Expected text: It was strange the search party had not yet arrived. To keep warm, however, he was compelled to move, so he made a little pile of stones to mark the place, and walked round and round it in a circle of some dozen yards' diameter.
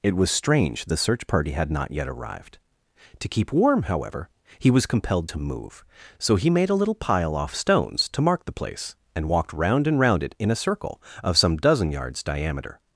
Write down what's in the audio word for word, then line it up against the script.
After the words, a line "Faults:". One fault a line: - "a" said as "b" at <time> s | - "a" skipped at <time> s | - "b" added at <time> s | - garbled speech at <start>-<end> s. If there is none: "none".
It was strange the search party had not yet arrived. To keep warm, however, he was compelled to move, so he made a little pile off stones to mark the place, and walked round and round it in a circle of some dozen yards' diameter.
Faults:
- "of" said as "off" at 7.3 s